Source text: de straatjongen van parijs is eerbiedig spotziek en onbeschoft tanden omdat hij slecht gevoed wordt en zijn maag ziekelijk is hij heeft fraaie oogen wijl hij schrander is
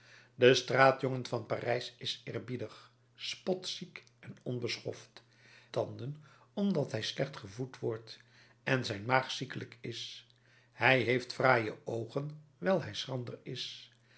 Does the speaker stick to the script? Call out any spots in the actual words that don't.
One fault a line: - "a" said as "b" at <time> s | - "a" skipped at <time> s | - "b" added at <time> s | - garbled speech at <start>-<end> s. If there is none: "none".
none